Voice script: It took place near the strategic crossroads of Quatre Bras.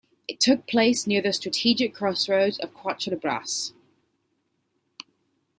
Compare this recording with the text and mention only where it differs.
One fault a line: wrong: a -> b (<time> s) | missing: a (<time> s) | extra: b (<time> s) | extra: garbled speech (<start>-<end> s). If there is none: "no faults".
no faults